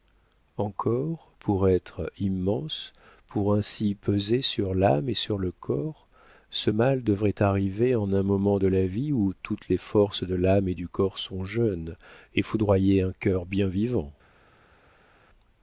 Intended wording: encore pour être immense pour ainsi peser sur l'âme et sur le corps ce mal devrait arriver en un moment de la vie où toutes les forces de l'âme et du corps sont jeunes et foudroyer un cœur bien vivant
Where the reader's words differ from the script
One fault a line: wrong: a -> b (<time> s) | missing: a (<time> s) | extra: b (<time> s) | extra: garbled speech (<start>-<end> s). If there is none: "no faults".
no faults